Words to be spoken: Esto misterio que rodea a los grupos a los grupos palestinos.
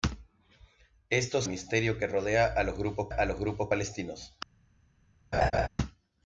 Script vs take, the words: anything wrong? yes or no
no